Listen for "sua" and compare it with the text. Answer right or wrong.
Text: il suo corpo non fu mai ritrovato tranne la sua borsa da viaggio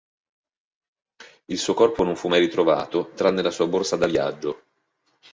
right